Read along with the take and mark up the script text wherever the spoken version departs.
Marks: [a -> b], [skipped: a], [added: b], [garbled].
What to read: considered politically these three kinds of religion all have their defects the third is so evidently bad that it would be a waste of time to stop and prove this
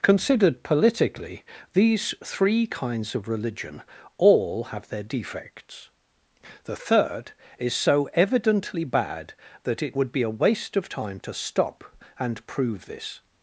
considered politically these three kinds of religion all have their defects the third is so evidently bad that it would be a waste of time to stop and prove this